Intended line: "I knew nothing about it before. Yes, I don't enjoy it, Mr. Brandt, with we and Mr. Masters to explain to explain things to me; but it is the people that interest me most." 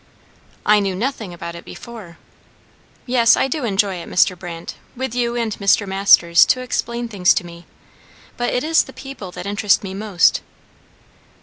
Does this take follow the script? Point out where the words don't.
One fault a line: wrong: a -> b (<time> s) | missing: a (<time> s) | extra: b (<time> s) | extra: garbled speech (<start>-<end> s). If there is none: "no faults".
wrong: don't -> do (3.5 s)
wrong: we -> you (5.1 s)
missing: to explain (7.1 s)